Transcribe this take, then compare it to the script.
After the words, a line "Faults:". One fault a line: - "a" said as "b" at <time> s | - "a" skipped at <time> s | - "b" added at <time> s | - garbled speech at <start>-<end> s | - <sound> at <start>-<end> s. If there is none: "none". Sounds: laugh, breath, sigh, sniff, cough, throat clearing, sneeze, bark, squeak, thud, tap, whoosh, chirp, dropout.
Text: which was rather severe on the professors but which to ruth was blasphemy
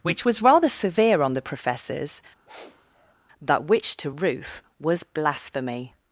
which was rather severe on the professors but which to ruth was blasphemy
Faults:
- sniff at 2.5-3.2 s